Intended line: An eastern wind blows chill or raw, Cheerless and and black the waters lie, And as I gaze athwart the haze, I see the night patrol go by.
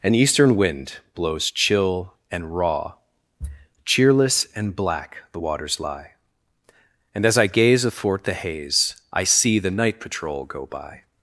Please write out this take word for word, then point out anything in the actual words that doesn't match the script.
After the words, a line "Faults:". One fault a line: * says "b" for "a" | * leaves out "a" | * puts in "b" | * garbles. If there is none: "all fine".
An eastern wind blows chill and raw, Cheerless and black the waters lie, And as I gaze athwart the haze, I see the night patrol go by.
Faults:
* says "and" for "or"
* leaves out "and"